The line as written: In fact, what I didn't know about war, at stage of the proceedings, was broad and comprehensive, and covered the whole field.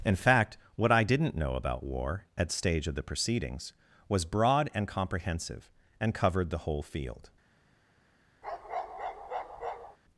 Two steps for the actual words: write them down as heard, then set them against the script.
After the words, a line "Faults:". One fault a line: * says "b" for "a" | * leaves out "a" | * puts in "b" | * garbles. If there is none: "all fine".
In fact, what I didn't know about war, at stage of the proceedings, was broad and comprehensive, and covered the whole field.
Faults:
all fine